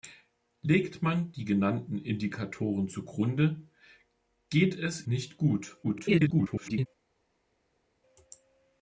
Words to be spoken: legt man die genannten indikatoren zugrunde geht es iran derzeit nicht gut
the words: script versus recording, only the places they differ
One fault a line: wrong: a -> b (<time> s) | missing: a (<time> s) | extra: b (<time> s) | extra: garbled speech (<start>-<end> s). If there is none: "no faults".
missing: iran derzeit (5.0 s)
extra: garbled speech (5.8-6.9 s)